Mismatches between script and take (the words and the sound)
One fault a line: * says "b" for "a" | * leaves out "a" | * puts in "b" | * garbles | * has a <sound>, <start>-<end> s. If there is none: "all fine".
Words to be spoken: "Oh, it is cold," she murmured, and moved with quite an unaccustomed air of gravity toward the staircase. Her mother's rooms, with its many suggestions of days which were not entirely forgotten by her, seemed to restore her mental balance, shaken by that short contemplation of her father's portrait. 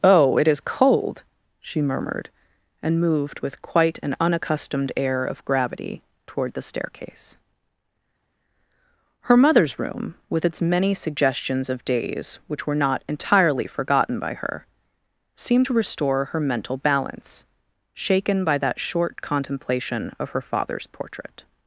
* says "room" for "rooms"